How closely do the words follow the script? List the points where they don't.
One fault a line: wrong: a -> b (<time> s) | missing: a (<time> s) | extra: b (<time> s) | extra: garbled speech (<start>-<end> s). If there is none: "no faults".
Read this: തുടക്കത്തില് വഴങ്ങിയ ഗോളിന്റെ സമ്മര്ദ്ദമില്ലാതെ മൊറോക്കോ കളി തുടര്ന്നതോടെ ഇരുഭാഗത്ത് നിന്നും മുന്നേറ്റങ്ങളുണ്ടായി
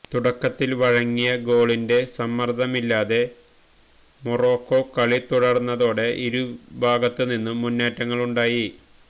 no faults